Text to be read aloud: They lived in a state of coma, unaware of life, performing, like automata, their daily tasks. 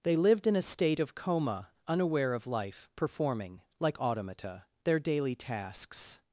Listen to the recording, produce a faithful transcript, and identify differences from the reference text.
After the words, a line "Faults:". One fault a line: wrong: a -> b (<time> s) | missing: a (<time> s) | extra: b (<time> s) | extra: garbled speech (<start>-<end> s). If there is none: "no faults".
They lived in a state of coma, unaware of life, performing, like automata, their daily tasks.
Faults:
no faults